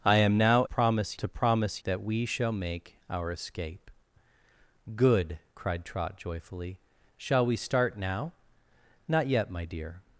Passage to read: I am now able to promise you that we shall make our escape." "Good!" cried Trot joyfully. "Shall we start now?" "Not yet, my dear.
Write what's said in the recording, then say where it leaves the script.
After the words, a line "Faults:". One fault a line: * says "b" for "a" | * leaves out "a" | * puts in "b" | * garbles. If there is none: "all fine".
I am now promise to promise that we shall make our escape." "Good!" cried Trot joyfully. "Shall we start now?" "Not yet, my dear.
Faults:
* says "promise" for "able"
* leaves out "you"